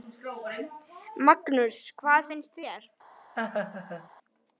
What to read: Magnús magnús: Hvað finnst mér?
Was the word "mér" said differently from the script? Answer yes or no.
yes